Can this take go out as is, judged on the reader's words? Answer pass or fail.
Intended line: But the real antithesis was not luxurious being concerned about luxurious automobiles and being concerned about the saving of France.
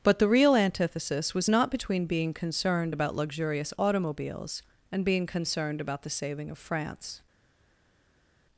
fail